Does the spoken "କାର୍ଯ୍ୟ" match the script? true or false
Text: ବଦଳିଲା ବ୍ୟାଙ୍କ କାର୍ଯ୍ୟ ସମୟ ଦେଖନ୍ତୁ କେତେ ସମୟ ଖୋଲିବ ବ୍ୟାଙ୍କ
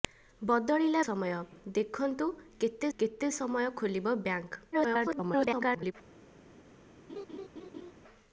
false